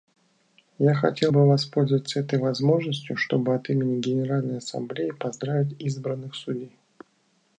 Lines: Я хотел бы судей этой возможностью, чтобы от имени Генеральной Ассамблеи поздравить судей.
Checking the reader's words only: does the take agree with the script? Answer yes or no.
no